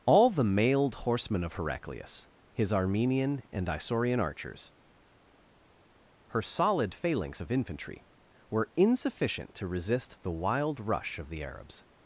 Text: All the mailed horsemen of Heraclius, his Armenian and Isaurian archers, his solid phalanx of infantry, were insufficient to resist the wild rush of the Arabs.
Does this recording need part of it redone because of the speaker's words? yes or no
yes